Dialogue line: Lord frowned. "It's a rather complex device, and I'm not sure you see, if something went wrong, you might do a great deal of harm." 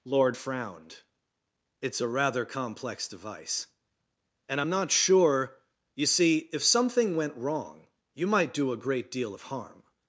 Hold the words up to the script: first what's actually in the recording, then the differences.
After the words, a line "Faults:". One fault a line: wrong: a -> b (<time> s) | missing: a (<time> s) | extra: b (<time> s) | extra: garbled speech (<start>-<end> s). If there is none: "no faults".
Lord frowned. "It's a rather complex device, and I'm not sure you see, if something went wrong, you might do a great deal of harm."
Faults:
no faults